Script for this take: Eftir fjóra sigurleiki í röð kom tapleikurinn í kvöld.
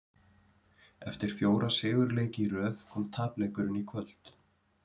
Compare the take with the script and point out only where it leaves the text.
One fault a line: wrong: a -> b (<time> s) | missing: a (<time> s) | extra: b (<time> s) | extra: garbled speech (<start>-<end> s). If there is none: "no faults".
no faults